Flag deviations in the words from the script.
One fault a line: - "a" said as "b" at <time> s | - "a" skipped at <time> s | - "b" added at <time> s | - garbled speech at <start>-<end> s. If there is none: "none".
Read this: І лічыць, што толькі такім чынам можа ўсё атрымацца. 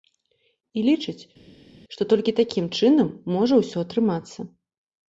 none